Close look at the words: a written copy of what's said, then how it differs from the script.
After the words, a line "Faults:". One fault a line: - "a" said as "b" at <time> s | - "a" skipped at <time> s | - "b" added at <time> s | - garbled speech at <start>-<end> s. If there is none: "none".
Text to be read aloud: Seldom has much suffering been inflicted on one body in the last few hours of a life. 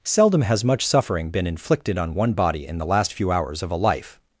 Seldom has much suffering been inflicted on one body in the last few hours of a life.
Faults:
none